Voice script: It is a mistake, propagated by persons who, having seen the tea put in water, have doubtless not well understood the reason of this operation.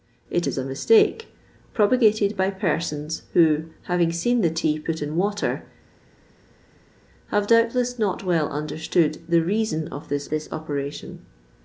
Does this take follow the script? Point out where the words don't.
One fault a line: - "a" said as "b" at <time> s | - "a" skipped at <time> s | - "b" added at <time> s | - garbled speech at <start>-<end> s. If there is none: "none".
- "this" added at 10.3 s